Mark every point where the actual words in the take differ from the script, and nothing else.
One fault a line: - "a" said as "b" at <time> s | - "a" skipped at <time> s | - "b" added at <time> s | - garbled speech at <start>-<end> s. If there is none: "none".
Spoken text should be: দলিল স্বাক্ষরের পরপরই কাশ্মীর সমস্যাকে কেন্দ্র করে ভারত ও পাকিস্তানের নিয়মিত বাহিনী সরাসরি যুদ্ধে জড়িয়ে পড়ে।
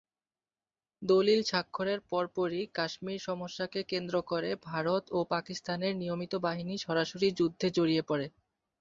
none